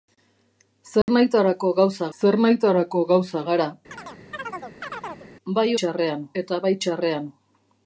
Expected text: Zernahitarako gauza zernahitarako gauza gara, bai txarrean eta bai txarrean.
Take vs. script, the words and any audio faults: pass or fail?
fail